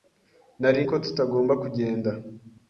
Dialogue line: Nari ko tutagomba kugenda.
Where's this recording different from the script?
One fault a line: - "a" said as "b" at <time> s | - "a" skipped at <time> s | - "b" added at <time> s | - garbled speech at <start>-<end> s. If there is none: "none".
none